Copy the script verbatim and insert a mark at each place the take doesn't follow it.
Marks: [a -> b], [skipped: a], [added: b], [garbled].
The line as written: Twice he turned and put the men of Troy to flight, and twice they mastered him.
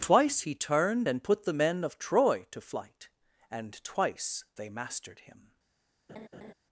Twice he turned and put the men of Troy to flight, and twice they mastered him.